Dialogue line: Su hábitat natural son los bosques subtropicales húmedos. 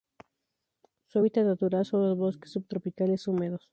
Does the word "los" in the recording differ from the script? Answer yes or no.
no